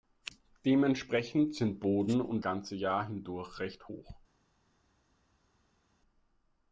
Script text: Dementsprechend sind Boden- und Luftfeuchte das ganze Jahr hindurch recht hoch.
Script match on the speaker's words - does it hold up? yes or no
no